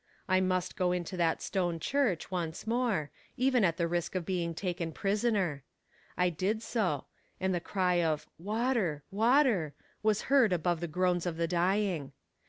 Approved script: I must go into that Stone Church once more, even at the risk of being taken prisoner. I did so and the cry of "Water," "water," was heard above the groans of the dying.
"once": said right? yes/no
yes